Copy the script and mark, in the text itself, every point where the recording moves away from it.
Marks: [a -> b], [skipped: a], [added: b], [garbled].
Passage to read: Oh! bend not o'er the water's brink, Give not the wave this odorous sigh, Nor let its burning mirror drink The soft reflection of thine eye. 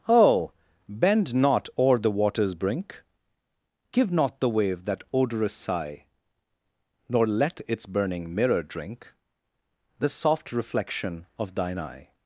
Oh! bend not o'er the water's brink, Give not the wave [this -> that] odorous sigh, Nor let its burning mirror drink The soft reflection of thine eye.